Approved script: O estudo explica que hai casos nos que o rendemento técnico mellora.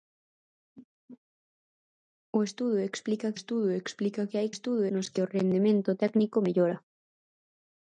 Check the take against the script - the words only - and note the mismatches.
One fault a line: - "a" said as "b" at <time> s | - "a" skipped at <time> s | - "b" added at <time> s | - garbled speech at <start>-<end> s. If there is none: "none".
- "estudo explica" added at 3.4 s
- "casos" said as "estudo" at 4.5 s